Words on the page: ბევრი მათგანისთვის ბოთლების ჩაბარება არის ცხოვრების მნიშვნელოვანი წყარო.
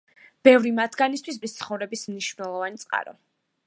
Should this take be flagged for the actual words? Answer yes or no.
yes